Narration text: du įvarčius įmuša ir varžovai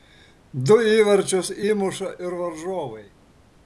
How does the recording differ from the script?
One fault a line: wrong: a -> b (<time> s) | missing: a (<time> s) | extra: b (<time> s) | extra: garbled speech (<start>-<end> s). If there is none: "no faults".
no faults